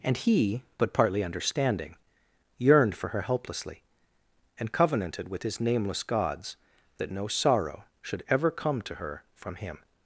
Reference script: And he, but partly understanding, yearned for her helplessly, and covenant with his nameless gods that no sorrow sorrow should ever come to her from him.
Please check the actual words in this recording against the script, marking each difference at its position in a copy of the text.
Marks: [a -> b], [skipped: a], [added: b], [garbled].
And he, but partly understanding, yearned for her helplessly, and [covenant -> covenanted] with his nameless gods that no sorrow [skipped: sorrow] should ever come to her from him.